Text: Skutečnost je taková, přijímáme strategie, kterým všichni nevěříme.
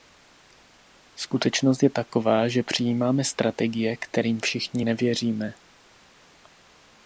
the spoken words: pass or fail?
fail